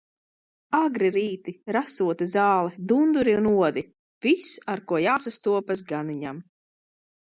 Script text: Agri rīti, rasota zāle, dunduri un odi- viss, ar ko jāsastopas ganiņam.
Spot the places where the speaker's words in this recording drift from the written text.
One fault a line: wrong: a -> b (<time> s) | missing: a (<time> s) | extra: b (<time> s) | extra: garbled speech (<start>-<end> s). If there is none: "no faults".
no faults